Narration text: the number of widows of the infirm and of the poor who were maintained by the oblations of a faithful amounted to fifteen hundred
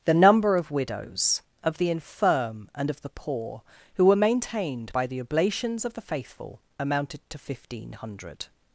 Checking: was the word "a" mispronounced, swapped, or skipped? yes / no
yes